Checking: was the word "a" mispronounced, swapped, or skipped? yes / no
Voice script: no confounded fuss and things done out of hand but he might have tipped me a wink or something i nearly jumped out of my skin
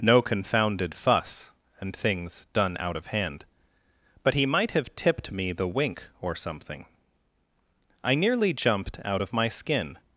yes